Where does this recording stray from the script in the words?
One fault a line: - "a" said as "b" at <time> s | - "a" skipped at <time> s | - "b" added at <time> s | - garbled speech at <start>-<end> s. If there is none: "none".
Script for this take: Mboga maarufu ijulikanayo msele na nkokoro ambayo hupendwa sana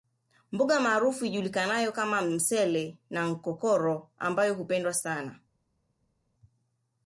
- "kama" added at 1.9 s